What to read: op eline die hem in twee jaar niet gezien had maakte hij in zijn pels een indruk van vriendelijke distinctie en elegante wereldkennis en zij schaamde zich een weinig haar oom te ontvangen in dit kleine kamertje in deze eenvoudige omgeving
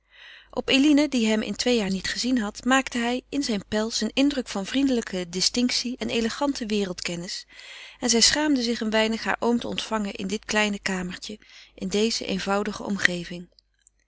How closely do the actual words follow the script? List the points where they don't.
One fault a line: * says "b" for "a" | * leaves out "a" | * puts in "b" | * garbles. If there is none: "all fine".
all fine